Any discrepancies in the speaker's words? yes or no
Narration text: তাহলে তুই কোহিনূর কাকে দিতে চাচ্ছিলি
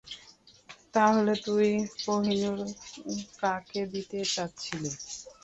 no